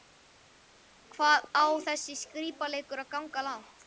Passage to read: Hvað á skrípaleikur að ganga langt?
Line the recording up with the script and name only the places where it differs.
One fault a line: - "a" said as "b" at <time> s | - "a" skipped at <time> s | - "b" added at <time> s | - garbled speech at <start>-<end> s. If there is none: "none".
- "þessi" added at 1.9 s